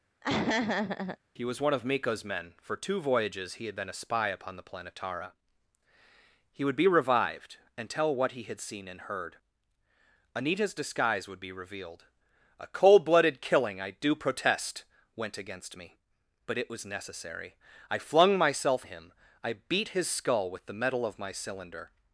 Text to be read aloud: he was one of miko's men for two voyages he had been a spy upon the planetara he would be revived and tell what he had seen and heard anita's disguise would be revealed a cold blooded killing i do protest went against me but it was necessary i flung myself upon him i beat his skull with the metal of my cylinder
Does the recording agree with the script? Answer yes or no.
no